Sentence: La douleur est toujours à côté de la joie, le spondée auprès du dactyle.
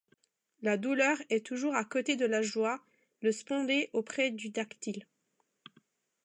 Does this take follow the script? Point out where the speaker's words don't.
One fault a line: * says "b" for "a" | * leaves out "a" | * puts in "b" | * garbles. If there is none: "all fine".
all fine